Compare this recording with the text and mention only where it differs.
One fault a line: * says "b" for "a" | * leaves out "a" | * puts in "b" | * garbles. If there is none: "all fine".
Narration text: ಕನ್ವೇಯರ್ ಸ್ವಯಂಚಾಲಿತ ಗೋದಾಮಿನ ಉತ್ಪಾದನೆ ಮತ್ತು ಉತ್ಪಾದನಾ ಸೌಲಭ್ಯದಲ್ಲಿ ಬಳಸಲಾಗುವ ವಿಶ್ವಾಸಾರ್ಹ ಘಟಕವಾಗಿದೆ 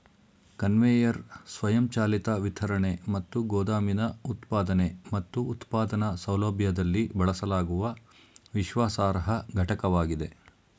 * puts in "ವಿತರಣೆ ಮತ್ತು"